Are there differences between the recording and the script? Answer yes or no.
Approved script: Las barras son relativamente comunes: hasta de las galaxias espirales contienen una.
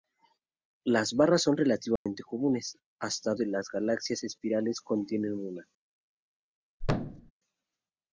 no